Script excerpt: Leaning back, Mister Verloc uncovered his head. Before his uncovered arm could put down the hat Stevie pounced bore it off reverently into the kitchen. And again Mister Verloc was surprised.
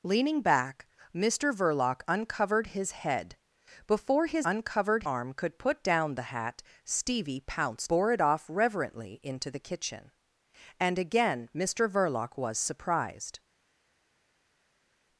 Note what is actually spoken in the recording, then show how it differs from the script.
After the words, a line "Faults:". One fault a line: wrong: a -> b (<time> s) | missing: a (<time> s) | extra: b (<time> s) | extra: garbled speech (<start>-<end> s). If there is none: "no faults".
Leaning back, Mister Verloc uncovered his head. Before his uncovered arm could put down the hat Stevie pounced bore it off reverently into the kitchen. And again Mister Verloc was surprised.
Faults:
no faults